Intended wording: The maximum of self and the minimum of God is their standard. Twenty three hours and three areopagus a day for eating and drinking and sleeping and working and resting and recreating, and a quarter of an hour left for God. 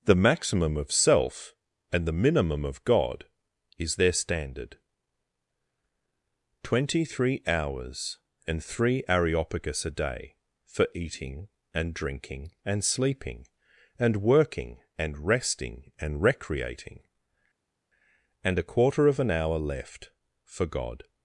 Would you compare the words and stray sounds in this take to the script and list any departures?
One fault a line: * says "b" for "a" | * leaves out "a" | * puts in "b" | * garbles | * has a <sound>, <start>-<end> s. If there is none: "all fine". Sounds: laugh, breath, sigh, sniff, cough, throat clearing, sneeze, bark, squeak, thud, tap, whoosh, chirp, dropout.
all fine